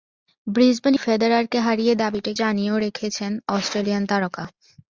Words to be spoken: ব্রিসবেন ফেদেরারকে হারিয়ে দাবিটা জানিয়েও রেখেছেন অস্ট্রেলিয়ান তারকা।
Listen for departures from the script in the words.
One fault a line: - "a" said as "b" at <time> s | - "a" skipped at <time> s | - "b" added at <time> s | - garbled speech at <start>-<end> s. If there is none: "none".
none